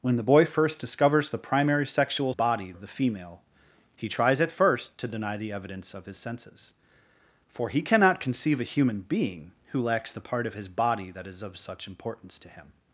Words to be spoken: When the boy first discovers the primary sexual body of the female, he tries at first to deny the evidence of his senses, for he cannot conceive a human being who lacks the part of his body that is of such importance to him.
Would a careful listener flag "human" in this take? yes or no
no